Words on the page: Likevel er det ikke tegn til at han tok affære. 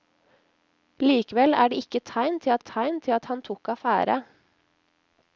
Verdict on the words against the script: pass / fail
fail